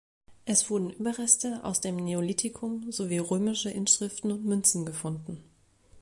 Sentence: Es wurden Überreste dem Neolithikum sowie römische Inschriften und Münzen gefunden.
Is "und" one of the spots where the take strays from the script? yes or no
no